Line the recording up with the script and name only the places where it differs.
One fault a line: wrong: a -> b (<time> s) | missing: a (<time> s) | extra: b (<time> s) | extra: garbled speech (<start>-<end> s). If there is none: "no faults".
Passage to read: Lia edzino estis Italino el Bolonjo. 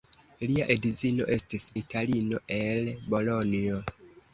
no faults